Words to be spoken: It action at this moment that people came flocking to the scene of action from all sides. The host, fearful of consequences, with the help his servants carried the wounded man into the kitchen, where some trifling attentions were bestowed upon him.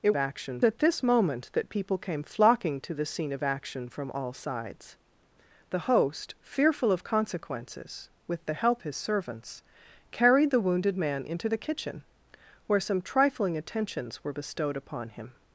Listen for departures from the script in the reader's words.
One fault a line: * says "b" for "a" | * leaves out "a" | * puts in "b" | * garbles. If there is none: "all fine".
all fine